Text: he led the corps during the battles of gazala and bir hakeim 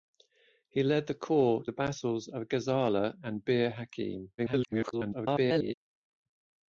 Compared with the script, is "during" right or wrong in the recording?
wrong